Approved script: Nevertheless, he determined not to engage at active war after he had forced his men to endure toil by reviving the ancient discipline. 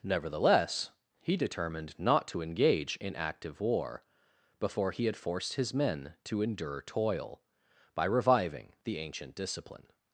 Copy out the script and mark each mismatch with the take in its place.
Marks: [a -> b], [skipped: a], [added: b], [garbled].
Nevertheless, he determined not to engage [at -> in] active war [after -> before] he had forced his men to endure toil by reviving the ancient discipline.